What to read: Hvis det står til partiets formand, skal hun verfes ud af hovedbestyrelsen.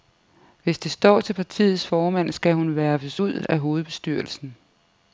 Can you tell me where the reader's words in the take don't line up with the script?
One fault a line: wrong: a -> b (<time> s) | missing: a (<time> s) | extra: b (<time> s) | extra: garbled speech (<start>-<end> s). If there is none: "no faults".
no faults